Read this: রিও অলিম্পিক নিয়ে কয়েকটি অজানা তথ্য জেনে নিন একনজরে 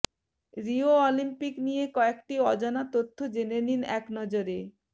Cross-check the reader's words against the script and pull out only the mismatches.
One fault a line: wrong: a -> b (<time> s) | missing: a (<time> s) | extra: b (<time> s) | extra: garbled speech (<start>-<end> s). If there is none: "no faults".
no faults